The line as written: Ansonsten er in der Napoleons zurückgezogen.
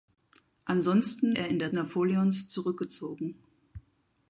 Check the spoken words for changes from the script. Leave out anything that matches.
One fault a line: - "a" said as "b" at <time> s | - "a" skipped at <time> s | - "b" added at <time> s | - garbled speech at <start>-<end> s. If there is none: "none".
none